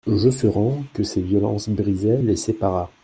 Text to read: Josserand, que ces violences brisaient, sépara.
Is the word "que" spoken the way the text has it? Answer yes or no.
yes